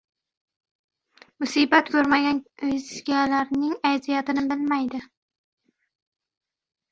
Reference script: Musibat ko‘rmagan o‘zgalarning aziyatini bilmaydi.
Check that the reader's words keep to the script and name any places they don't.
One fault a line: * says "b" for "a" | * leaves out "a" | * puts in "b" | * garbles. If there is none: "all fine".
all fine